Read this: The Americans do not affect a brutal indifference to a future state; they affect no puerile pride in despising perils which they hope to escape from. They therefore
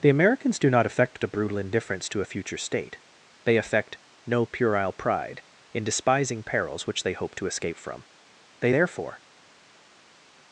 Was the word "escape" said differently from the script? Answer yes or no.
no